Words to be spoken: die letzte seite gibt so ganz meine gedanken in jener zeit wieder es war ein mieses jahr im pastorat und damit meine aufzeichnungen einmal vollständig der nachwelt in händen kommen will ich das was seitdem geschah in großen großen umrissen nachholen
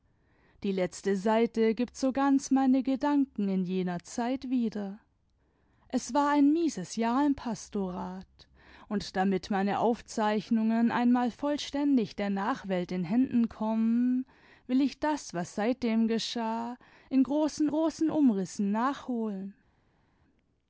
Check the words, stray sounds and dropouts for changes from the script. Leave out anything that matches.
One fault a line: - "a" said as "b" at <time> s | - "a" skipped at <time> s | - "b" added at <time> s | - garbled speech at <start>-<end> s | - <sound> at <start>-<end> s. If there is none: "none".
none